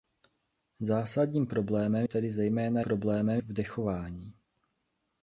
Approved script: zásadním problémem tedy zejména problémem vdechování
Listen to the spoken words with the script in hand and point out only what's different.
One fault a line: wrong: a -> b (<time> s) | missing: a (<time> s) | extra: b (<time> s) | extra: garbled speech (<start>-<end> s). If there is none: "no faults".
no faults